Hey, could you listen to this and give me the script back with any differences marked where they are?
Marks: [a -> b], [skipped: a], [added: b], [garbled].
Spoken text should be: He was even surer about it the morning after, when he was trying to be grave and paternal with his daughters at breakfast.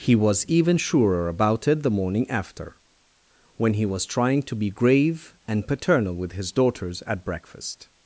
He was even surer about it the morning after, when he was trying to be grave and paternal with his daughters at breakfast.